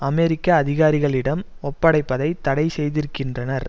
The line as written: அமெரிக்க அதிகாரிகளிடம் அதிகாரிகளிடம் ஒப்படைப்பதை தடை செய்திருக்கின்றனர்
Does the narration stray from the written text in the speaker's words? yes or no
yes